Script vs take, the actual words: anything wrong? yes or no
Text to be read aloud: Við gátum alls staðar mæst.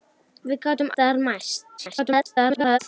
yes